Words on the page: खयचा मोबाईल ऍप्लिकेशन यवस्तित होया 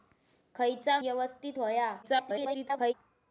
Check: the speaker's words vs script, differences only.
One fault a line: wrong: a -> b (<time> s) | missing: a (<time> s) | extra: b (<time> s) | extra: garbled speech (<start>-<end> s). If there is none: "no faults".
missing: मोबाईल ऍप्लिकेशन (1.0 s)
extra: garbled speech (2.0-2.9 s)